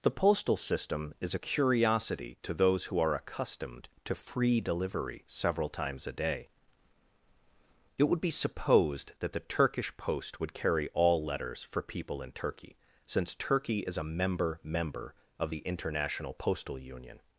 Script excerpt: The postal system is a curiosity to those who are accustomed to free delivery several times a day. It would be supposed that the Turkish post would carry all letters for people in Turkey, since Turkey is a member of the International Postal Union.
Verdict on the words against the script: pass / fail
fail